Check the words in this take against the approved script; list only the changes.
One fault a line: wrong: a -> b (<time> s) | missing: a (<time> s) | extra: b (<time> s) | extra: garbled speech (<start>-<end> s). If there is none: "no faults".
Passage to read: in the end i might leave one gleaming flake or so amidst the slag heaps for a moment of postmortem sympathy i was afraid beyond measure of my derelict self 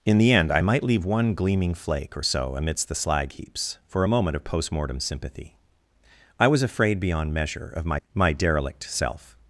extra: my (8.1 s)